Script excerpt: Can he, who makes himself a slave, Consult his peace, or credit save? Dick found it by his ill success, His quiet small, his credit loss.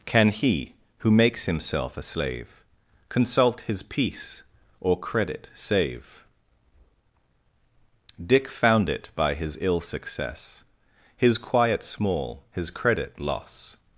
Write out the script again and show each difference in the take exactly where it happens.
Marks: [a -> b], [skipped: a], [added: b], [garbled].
Can he, who makes himself a slave, Consult his peace, or credit save? Dick found it by his ill success, His quiet small, his credit loss.